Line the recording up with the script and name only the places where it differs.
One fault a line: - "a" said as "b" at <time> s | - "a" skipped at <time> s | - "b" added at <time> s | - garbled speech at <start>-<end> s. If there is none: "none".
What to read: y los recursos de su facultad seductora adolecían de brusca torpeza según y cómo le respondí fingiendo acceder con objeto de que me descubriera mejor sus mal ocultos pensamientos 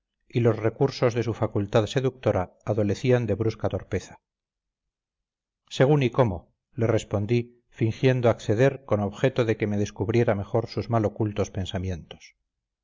none